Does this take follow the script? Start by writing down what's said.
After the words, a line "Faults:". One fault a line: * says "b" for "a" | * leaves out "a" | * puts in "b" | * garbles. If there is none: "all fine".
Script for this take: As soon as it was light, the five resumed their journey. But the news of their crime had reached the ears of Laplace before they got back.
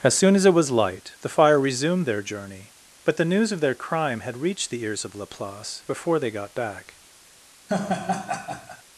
As soon as it was light, the fire resumed their journey. But the news of their crime had reached the ears of Laplace before they got back.
Faults:
* says "fire" for "five"